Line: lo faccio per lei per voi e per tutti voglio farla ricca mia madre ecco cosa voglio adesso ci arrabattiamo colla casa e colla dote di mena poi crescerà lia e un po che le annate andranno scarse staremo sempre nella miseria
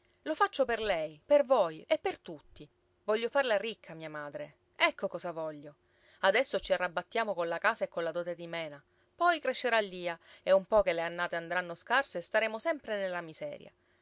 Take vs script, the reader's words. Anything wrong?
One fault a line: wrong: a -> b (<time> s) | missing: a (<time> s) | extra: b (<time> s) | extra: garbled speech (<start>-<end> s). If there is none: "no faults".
no faults